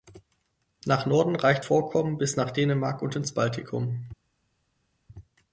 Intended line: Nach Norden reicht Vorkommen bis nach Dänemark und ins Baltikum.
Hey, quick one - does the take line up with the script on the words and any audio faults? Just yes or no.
yes